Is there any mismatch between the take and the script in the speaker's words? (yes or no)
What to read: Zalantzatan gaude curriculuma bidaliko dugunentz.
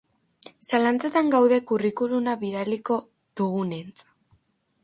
no